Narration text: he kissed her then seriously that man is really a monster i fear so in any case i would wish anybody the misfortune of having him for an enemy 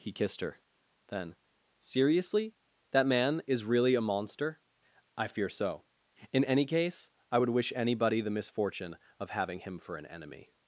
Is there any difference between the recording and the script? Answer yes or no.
no